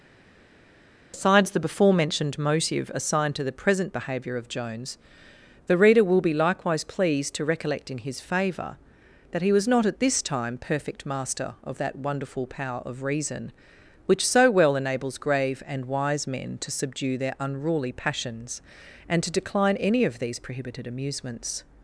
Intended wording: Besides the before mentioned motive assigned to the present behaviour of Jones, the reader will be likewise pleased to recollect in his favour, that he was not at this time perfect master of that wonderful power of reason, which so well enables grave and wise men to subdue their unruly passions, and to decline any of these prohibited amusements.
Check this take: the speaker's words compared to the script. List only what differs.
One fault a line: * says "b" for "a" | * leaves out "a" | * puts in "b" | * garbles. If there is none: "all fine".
all fine